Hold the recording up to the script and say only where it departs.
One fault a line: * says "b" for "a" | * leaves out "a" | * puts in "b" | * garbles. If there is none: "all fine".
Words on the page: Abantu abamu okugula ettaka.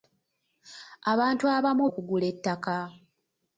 all fine